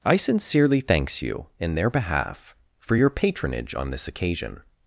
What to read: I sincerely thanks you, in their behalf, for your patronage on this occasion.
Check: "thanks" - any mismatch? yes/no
no